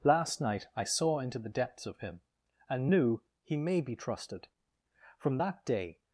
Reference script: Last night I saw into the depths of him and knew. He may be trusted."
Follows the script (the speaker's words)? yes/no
no